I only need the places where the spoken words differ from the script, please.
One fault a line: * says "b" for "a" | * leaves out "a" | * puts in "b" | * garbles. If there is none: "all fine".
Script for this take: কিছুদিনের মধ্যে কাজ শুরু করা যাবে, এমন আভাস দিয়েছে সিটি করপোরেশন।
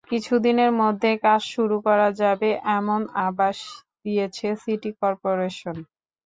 all fine